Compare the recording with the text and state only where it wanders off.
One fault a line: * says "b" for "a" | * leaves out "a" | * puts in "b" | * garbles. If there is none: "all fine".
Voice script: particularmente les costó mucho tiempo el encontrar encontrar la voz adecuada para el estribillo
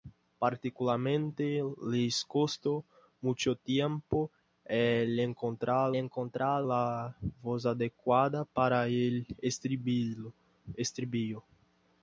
all fine